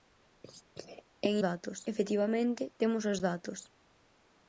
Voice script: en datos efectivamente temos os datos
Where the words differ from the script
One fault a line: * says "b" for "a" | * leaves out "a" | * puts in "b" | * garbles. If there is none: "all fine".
all fine